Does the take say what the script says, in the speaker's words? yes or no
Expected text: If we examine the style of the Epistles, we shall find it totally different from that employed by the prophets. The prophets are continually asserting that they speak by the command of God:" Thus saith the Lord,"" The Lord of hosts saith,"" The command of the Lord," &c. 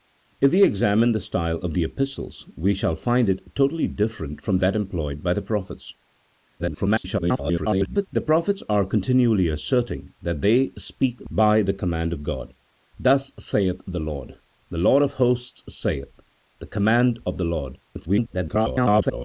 no